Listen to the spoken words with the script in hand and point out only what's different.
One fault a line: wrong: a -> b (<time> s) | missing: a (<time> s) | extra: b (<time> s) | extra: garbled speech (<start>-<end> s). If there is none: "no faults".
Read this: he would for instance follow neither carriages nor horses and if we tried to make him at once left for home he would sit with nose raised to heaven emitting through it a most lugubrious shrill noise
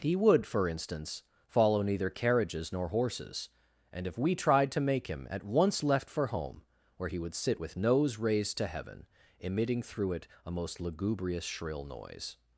extra: where (7.0 s)